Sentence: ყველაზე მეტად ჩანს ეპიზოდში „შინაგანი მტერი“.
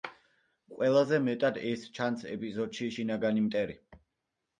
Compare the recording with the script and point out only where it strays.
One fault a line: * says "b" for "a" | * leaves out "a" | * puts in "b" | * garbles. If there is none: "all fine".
* puts in "ეს"